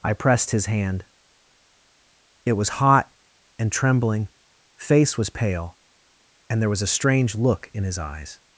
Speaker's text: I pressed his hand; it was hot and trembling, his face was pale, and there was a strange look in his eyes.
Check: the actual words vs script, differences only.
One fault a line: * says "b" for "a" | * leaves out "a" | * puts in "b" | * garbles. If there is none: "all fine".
* leaves out "his"